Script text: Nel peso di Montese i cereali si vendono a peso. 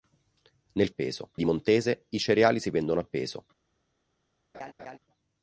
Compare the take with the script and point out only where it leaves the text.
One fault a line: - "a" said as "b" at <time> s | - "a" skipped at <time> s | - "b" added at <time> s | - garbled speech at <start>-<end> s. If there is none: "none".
none